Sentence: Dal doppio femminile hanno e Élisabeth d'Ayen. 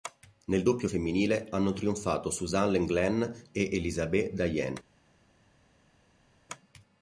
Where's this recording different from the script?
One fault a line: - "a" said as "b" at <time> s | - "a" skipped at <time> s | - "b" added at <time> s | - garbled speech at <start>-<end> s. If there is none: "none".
- "Dal" said as "Nel" at 0.5 s
- "trionfato Suzanne Lenglen" added at 1.7 s